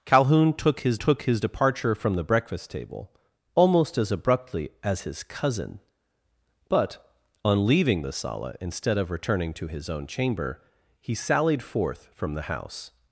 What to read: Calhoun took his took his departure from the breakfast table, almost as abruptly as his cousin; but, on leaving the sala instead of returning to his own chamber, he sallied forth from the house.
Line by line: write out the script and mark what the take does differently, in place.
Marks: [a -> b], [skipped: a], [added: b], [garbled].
Calhoun took his took his departure from the breakfast table, almost as abruptly as his cousin; but, on leaving the sala instead of returning to his own chamber, he sallied forth from the house.